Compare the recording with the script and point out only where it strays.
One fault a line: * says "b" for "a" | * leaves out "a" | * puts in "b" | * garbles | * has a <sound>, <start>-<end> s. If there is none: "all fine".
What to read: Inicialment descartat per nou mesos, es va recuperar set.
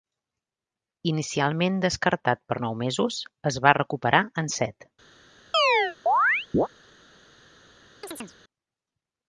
* puts in "en"
* has a chirp, 5.5-6.7 s
* has a chirp, 8.0-8.4 s